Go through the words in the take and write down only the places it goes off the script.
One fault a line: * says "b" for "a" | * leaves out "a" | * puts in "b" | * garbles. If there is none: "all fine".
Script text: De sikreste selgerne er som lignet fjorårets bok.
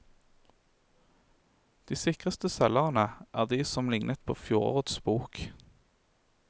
* puts in "de"
* puts in "på"